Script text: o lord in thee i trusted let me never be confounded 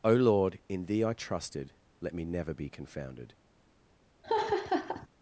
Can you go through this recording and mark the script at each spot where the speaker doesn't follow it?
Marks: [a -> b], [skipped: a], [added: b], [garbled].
o lord in thee i trusted let me never be confounded